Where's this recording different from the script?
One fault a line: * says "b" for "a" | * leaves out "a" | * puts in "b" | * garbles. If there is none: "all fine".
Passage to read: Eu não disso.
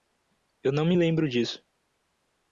* puts in "me lembro"